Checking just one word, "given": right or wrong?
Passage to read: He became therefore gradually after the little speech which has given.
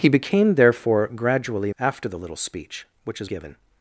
right